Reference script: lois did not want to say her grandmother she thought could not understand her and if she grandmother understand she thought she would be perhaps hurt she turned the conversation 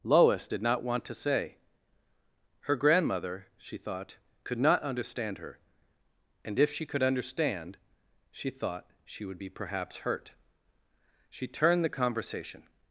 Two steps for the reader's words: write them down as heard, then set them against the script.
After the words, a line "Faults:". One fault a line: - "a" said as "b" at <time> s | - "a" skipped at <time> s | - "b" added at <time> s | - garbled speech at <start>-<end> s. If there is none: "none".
lois did not want to say her grandmother she thought could not understand her and if she could understand she thought she would be perhaps hurt she turned the conversation
Faults:
- "grandmother" said as "could" at 6.8 s